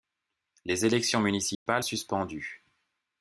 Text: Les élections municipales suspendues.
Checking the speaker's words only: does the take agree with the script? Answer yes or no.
yes